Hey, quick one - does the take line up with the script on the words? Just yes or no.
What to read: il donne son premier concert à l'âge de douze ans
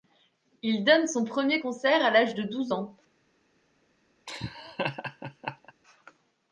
yes